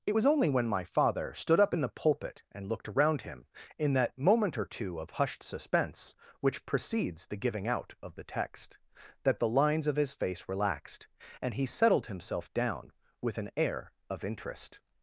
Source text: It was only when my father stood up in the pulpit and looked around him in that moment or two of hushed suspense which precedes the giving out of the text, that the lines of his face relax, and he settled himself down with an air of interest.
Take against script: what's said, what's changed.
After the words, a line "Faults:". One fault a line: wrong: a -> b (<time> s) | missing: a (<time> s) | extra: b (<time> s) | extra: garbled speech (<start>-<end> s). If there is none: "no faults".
It was only when my father stood up in the pulpit and looked around him in that moment or two of hushed suspense which precedes the giving out of the text, that the lines of his face relaxed, and he settled himself down with an air of interest.
Faults:
wrong: relax -> relaxed (10.5 s)